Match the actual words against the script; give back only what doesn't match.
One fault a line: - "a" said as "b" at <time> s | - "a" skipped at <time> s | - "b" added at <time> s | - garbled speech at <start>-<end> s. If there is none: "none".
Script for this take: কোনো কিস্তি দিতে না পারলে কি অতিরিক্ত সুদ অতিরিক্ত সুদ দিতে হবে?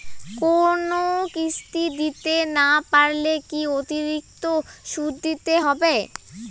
- "অতিরিক্ত সুদ" skipped at 5.1 s